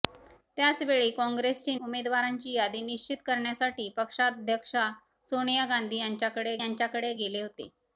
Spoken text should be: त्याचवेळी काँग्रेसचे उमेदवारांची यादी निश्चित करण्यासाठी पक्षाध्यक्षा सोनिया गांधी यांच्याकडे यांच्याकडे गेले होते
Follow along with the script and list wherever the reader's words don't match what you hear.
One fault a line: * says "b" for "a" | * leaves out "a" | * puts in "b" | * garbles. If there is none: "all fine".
all fine